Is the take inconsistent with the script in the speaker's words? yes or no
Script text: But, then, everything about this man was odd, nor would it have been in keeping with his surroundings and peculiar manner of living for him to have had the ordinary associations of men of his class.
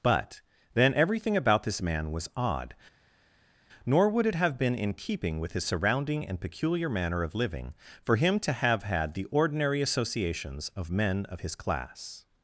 yes